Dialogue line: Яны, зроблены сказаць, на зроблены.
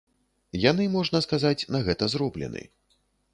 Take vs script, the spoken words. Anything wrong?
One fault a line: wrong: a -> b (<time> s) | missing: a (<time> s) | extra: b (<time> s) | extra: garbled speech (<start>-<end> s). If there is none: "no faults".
wrong: зроблены -> можна (0.9 s)
extra: гэта (1.9 s)